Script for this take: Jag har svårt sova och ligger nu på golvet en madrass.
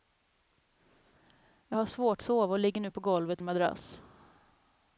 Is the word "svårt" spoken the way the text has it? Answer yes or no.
yes